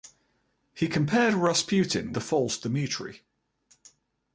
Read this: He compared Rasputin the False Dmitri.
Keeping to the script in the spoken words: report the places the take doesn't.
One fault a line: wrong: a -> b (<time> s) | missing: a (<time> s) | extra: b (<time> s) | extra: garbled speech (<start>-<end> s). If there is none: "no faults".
no faults